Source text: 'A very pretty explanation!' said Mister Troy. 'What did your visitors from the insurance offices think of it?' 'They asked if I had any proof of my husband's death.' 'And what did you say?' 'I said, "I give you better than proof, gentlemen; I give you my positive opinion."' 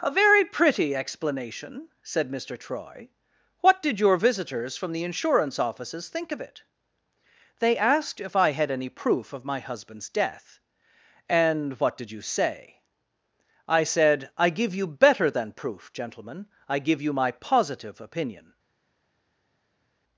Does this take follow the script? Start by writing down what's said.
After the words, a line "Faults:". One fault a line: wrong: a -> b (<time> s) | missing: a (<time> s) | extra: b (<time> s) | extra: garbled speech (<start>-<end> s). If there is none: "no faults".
'A very pretty explanation!' said Mister Troy. 'What did your visitors from the insurance offices think of it?' 'They asked if I had any proof of my husband's death.' 'And what did you say?' 'I said, "I give you better than proof, gentlemen; I give you my positive opinion."'
Faults:
no faults